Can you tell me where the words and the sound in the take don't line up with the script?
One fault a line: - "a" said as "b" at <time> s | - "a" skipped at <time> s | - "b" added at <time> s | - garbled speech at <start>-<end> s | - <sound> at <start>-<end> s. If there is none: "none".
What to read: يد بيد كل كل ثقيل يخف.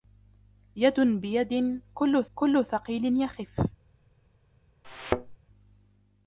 - thud at 4.8-5.4 s